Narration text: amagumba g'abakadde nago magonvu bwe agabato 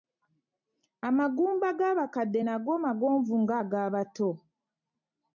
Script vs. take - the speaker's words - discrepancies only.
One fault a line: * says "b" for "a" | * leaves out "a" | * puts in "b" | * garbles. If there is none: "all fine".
* says "nga" for "bwe"